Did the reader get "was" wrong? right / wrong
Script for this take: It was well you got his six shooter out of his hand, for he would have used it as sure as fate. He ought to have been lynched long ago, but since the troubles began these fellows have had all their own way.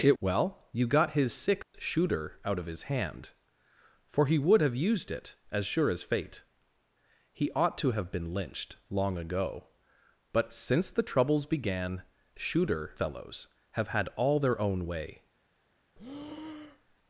wrong